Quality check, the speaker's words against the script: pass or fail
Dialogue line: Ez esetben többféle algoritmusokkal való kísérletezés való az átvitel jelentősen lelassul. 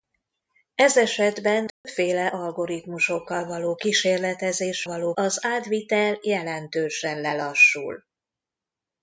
pass